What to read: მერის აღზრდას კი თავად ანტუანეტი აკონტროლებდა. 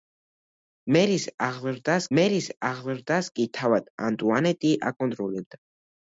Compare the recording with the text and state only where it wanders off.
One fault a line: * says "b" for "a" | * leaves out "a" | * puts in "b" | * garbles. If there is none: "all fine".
* puts in "მერის აღზრდას"